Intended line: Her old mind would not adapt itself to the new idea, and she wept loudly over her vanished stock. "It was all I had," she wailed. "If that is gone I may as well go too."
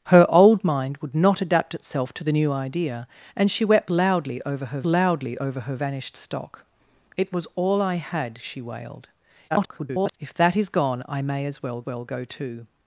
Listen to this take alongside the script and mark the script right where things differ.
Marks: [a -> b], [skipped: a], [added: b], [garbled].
Her old mind would not adapt itself to the new idea, and she wept loudly over her [added: loudly over her] vanished stock. "It was all I had," she wailed. [garbled] "If that is gone I may as well [added: well] go too."